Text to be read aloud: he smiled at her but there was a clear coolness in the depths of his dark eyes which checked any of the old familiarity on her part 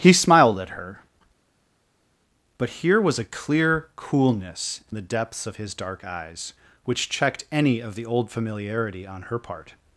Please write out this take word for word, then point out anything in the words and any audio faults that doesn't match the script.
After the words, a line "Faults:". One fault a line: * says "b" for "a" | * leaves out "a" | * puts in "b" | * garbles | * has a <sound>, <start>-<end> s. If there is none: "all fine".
he smiled at her but here was a clear coolness in the depths of his dark eyes which checked any of the old familiarity on her part
Faults:
* says "here" for "there"